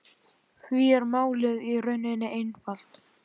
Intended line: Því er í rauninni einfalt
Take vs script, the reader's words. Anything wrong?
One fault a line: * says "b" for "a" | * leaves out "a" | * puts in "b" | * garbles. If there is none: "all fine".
* puts in "málið"